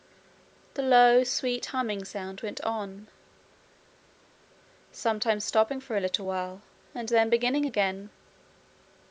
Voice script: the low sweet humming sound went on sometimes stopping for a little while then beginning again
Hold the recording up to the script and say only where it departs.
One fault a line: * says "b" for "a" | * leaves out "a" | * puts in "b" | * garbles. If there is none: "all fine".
* puts in "and"